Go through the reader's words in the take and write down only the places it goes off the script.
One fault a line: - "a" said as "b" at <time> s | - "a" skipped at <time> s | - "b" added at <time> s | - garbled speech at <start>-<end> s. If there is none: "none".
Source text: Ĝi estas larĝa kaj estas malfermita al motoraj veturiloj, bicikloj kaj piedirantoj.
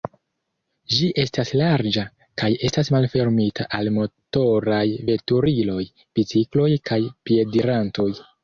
none